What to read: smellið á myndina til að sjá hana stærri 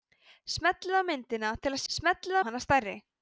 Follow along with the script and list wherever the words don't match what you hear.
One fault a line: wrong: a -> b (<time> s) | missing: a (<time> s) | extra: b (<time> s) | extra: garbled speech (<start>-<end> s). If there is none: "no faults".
wrong: sjá -> smellið (1.9 s)